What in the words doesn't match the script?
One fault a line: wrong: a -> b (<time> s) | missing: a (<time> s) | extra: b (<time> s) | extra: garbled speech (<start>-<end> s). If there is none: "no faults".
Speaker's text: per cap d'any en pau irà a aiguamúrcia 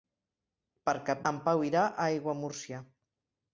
missing: d'any (1.2 s)